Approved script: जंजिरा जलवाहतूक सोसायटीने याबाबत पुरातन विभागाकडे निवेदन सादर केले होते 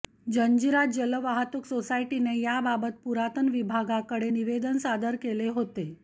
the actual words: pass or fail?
pass